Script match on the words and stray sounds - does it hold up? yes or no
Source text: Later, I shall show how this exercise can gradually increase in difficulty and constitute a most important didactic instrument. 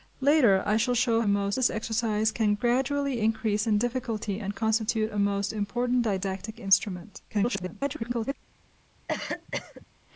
no